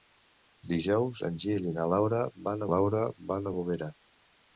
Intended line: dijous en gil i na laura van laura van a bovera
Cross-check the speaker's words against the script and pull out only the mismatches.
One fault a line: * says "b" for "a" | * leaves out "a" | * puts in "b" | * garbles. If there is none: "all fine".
all fine